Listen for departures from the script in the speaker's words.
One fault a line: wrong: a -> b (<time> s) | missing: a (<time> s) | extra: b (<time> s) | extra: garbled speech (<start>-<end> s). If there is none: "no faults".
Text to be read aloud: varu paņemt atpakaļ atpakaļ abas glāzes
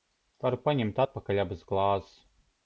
missing: atpakaļ (1.4 s)